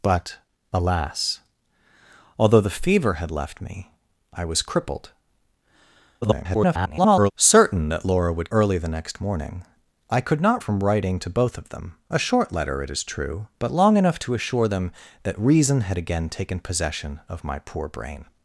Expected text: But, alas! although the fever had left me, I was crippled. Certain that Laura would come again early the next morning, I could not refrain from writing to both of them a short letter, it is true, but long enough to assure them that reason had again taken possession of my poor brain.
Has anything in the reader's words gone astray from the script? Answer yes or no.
yes